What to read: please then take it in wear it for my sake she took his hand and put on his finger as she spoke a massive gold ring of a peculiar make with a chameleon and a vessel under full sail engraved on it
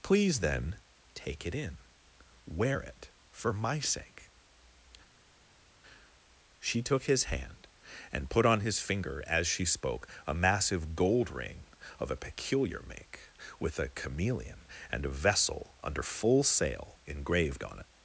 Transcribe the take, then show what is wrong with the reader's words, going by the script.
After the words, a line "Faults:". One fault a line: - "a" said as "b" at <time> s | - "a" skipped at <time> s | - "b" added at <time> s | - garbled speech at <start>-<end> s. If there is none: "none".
please then take it in wear it for my sake she took his hand and put on his finger as she spoke a massive gold ring of a peculiar make with a chameleon and a vessel under full sail engraved on it
Faults:
none